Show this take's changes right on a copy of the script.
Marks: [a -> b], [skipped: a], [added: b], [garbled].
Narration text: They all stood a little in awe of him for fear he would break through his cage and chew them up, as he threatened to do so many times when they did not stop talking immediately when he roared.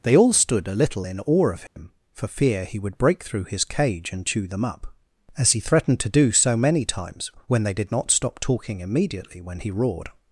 They all stood a little in awe of him for fear he would break through his cage and chew them up, as he threatened to do so many times when they did not stop talking immediately when he roared.